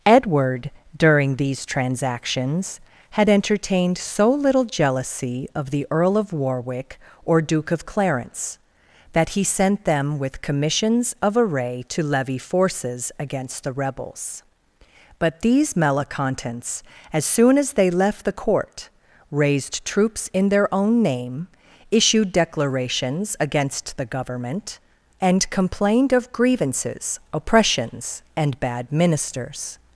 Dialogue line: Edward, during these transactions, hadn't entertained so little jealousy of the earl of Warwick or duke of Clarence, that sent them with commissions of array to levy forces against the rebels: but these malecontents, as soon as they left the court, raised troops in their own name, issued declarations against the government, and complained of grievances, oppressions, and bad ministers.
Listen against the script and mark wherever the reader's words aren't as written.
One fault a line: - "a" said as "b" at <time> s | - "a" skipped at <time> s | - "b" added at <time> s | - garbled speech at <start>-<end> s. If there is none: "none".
- "hadn't" said as "had" at 3.1 s
- "he" added at 9.3 s